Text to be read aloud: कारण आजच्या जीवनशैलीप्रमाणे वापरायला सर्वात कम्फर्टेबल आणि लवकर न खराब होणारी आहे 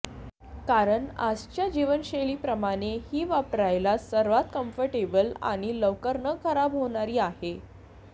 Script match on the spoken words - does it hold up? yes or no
no